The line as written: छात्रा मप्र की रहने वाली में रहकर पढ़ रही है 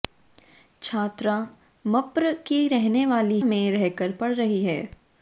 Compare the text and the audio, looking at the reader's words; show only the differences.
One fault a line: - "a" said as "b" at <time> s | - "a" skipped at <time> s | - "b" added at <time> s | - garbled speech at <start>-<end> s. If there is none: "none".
none